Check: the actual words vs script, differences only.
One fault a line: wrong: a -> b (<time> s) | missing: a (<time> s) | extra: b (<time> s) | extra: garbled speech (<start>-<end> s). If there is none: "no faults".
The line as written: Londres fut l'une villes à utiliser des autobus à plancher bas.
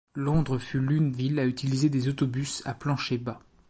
no faults